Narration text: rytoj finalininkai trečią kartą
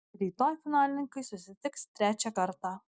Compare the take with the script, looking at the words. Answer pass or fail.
fail